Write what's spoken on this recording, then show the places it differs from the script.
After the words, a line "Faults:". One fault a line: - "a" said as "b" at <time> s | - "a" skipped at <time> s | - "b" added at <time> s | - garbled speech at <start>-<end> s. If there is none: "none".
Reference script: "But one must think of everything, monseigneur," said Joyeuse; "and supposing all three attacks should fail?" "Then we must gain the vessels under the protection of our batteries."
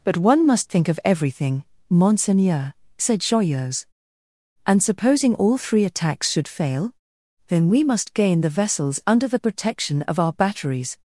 "But one must think of everything, monseigneur," said Joyeuse; "and supposing all three attacks should fail?" "Then we must gain the vessels under the protection of our batteries."
Faults:
none